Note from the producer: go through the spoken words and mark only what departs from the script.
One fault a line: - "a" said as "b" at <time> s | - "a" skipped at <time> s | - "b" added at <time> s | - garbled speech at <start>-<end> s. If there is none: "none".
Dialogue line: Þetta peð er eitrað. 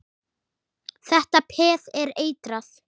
none